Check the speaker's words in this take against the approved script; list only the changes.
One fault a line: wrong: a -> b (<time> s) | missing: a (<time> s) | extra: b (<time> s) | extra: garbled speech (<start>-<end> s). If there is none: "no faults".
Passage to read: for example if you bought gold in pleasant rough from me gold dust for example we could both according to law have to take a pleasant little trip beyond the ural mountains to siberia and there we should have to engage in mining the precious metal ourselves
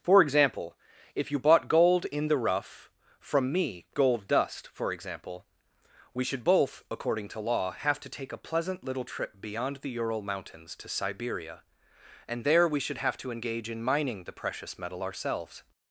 wrong: pleasant -> the (2.3 s)
wrong: could -> should (6.2 s)